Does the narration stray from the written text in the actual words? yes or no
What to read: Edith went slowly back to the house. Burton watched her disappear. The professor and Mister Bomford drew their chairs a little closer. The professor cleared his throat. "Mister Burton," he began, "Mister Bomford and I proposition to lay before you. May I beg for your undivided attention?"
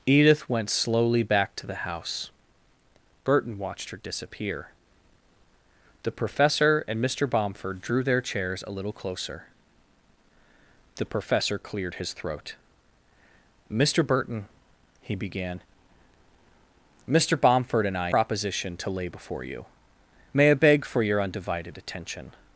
no